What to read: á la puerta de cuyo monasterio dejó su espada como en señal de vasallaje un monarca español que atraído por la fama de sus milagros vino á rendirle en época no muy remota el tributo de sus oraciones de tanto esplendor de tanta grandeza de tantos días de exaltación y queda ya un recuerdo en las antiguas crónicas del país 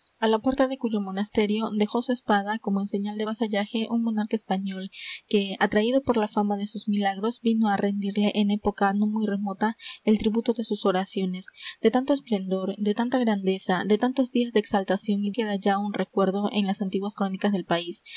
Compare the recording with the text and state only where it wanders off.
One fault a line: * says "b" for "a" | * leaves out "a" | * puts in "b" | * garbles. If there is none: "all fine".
all fine